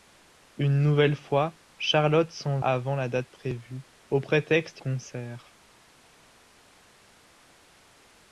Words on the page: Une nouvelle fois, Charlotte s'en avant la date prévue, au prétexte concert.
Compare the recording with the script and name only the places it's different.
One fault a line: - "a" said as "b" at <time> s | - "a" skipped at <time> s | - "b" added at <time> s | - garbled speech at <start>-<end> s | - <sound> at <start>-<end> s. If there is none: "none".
none